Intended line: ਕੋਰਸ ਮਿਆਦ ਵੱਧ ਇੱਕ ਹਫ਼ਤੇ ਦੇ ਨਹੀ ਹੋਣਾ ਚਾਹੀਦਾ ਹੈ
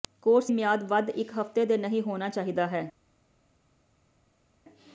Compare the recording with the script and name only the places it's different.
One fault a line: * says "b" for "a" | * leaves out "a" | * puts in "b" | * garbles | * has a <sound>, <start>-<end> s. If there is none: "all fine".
all fine